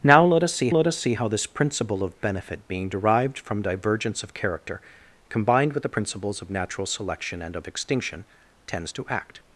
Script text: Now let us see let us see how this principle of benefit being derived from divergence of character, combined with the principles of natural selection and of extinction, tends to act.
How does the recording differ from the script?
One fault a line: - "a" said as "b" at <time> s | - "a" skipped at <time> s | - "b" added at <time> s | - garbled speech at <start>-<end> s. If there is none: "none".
none